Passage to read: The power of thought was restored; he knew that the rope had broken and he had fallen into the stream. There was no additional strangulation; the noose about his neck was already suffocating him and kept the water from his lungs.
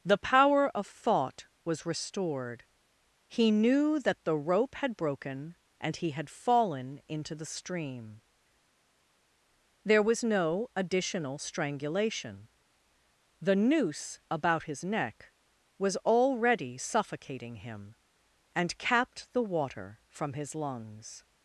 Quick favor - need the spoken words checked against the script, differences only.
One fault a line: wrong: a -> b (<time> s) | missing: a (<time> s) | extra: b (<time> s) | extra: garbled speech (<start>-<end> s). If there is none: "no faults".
wrong: kept -> capped (18.8 s)